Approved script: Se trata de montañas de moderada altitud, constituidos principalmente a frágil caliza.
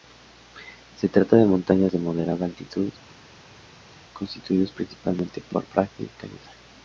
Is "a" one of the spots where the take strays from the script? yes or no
yes